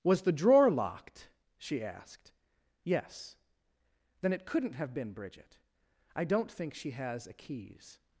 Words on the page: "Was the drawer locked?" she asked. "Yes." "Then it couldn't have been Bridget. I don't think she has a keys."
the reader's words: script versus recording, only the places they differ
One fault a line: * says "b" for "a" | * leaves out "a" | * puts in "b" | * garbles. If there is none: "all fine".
all fine